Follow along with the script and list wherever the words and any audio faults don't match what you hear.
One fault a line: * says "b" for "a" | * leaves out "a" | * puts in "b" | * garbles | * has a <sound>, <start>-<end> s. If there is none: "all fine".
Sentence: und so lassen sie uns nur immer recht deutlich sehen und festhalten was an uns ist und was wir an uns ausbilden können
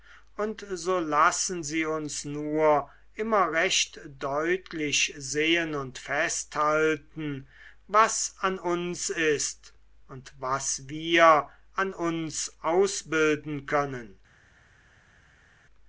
all fine